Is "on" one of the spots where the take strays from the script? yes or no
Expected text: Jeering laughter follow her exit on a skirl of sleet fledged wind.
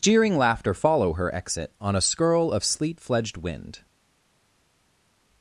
no